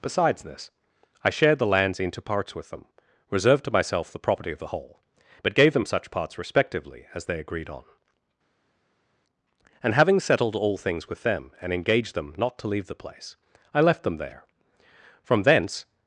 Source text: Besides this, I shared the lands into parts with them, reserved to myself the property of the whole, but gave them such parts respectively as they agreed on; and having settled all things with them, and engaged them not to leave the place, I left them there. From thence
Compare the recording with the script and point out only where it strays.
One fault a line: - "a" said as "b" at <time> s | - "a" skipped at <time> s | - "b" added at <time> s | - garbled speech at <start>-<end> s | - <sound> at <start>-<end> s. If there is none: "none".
none